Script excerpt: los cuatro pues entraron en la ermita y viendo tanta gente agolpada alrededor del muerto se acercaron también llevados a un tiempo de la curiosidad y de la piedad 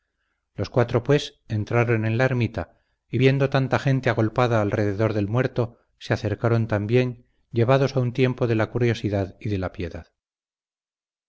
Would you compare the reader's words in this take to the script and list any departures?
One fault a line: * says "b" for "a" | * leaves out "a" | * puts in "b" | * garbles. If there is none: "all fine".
all fine